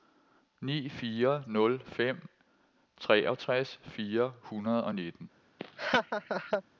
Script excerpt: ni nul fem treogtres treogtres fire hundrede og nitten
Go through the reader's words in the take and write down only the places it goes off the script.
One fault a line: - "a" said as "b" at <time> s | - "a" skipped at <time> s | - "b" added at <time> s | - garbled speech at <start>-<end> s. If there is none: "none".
- "fire" added at 0.9 s
- "treogtres" skipped at 3.8 s